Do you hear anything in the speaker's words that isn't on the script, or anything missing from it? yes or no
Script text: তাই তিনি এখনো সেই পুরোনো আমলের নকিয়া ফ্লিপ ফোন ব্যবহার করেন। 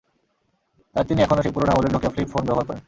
no